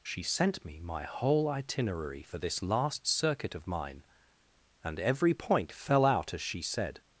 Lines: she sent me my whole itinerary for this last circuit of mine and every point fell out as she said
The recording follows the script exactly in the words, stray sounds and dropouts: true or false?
true